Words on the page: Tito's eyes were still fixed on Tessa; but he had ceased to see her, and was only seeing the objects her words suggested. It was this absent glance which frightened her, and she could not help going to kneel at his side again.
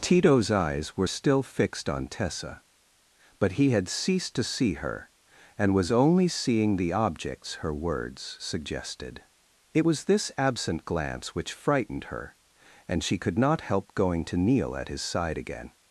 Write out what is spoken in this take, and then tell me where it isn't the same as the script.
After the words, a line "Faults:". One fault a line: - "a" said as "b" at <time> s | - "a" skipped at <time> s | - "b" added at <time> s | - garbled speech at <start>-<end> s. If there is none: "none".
Tito's eyes were still fixed on Tessa; but he had ceased to see her, and was only seeing the objects her words suggested. It was this absent glance which frightened her, and she could not help going to kneel at his side again.
Faults:
none